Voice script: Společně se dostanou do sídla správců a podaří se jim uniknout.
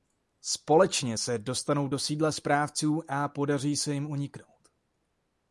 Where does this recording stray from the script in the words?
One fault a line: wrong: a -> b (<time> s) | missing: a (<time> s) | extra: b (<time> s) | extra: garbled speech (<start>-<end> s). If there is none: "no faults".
no faults